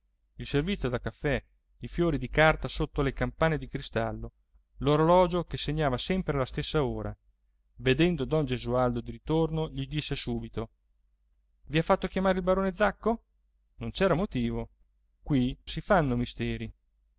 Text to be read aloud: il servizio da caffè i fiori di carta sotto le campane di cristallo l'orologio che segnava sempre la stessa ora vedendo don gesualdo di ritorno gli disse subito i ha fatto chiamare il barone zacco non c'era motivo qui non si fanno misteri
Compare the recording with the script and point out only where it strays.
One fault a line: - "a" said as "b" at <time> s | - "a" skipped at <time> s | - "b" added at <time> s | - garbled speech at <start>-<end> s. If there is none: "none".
- "non" skipped at 15.6 s